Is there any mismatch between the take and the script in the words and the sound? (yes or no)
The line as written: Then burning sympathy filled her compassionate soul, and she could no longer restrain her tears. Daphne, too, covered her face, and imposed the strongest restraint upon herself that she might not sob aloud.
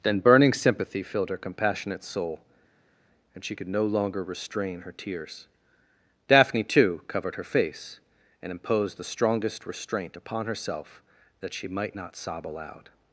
no